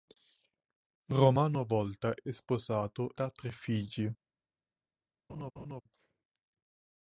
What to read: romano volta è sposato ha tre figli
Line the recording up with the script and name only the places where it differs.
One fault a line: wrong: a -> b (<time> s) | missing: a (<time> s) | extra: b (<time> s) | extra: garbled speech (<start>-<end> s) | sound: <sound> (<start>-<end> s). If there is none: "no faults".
sound: laugh (5.3-5.8 s)